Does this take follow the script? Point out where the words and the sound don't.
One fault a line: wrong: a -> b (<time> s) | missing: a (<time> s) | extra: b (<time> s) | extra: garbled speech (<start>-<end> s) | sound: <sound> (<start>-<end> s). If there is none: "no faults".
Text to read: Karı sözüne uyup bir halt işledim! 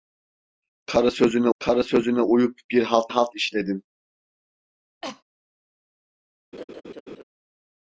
extra: karı sözüne (1.6 s)
extra: halt (3.1 s)
sound: cough (5.0-5.2 s)
sound: laugh (6.5-7.2 s)